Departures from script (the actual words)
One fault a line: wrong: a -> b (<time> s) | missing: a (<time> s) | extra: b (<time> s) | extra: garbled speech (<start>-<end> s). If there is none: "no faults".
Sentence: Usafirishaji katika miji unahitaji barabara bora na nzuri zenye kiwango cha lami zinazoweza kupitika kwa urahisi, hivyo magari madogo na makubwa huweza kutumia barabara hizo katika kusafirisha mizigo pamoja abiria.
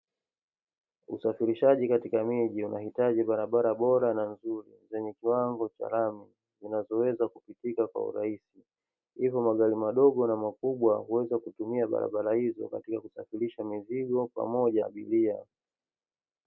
no faults